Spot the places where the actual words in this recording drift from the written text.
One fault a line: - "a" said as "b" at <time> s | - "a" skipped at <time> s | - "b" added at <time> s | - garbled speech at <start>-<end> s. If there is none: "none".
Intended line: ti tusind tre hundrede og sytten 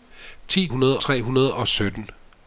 - "tusind" said as "hundrede" at 0.7 s